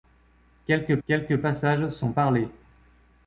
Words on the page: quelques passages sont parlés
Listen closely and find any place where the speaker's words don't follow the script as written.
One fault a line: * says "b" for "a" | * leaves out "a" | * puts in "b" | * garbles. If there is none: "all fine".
* puts in "quelques"